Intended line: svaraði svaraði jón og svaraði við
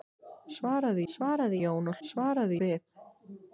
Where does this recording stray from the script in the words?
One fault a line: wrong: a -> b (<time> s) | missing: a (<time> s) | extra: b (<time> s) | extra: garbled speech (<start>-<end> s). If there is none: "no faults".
no faults